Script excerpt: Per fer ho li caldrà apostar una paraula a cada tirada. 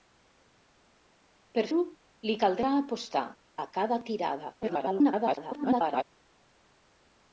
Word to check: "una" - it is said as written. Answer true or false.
false